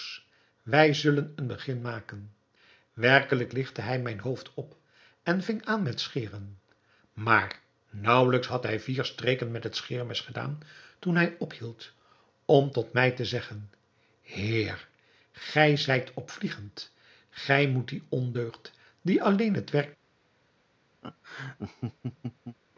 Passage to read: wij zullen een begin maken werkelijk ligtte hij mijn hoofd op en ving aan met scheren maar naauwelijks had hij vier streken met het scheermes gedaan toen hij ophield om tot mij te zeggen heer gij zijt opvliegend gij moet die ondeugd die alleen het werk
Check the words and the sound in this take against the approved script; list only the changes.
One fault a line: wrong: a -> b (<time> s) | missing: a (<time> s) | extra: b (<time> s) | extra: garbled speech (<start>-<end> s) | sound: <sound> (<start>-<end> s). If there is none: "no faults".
sound: laugh (21.0-22.6 s)